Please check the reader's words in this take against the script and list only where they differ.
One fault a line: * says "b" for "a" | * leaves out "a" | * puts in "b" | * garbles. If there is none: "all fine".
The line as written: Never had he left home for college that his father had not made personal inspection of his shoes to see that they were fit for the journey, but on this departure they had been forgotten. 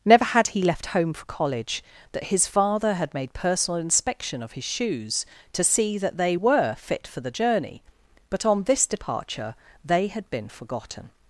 * leaves out "not"